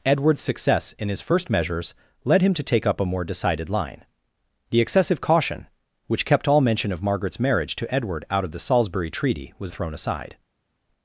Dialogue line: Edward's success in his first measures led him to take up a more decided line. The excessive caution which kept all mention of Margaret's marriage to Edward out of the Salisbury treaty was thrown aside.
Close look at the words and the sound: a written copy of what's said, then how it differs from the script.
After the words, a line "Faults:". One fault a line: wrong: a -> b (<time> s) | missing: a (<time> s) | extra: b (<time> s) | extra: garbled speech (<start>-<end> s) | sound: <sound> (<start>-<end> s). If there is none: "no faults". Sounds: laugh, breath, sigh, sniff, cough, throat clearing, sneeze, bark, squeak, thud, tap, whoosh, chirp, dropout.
Edward's success in his first measures led him to take up a more decided line. The excessive caution which kept all mention of Margaret's marriage to Edward out of the Salisbury treaty was thrown aside.
Faults:
no faults